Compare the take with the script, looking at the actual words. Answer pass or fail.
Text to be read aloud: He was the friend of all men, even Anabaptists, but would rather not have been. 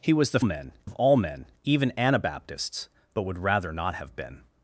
fail